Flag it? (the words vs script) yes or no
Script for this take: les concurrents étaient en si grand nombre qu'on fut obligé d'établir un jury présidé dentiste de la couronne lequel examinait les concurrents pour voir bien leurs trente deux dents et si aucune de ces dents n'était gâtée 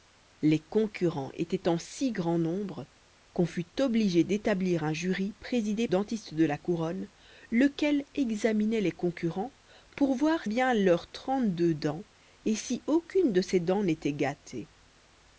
no